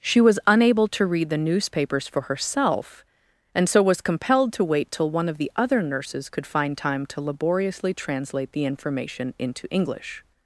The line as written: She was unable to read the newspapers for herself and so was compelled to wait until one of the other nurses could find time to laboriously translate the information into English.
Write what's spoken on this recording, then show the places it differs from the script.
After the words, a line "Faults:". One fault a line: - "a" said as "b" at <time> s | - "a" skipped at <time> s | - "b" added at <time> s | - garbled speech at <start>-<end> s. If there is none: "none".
She was unable to read the newspapers for herself and so was compelled to wait till one of the other nurses could find time to laboriously translate the information into English.
Faults:
- "until" said as "till" at 4.9 s